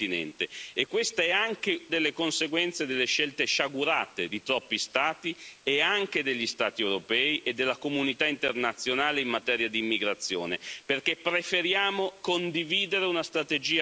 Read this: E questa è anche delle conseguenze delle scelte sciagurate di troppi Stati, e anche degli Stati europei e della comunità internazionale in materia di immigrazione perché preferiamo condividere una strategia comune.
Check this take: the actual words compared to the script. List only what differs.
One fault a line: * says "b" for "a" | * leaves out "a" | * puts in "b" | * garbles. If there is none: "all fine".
all fine